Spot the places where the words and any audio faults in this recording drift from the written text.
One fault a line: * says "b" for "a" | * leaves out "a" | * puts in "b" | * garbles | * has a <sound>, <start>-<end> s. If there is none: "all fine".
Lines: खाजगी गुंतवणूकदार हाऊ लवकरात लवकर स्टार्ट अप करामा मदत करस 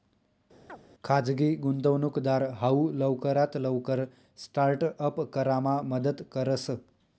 * has a chirp, 0.7-0.8 s